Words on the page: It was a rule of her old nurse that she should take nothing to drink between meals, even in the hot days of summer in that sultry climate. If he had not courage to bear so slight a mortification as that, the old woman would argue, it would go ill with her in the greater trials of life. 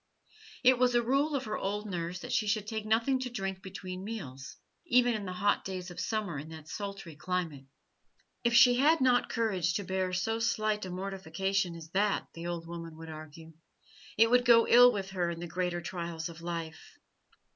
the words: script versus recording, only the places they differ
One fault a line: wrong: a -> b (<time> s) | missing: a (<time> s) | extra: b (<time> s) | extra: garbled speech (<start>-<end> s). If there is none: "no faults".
wrong: he -> she (8.6 s)